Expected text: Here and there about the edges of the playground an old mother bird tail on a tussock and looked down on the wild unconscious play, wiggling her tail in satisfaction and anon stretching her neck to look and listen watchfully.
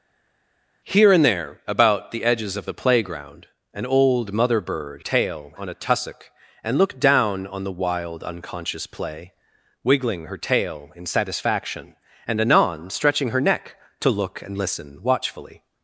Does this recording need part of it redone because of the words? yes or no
no